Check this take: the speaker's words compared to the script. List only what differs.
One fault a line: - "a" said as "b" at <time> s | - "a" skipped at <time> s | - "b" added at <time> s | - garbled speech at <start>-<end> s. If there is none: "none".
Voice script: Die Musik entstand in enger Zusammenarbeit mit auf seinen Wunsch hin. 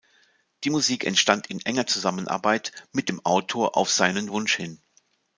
- "dem Autor" added at 3.1 s